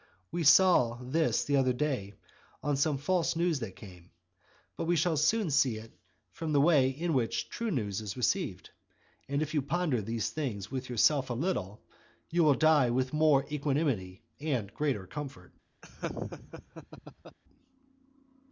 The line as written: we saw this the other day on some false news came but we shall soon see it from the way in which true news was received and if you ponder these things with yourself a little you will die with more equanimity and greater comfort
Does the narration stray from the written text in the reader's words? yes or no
yes